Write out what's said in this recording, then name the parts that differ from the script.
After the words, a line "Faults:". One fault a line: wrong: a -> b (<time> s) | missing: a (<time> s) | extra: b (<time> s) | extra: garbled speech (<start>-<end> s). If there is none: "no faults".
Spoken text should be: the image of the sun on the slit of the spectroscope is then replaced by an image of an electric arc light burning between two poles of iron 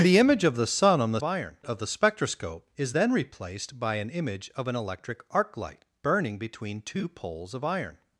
the image of the sun on the iron of the spectroscope is then replaced by an image of an electric arc light burning between two poles of iron
Faults:
wrong: slit -> iron (1.2 s)